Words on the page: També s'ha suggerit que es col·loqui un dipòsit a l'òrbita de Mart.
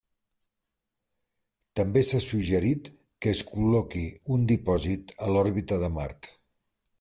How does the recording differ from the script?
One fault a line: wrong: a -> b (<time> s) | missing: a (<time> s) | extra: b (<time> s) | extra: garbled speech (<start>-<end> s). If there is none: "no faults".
no faults